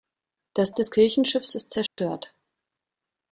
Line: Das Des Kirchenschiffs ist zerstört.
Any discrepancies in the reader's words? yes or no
no